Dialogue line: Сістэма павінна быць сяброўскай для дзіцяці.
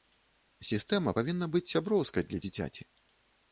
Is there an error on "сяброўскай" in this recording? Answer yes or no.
no